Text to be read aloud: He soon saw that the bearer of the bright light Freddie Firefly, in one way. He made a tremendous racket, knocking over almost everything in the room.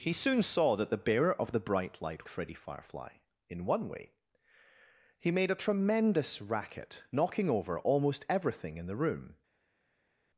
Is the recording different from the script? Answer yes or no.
no